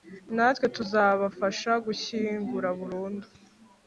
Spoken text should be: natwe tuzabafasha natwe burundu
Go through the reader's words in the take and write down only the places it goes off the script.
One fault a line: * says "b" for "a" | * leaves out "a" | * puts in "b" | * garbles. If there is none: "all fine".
* says "gushyingura" for "natwe"